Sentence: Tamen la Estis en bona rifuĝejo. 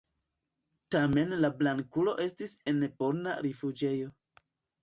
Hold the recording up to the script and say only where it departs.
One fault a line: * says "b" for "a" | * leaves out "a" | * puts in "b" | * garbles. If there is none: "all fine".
* puts in "Blankulo"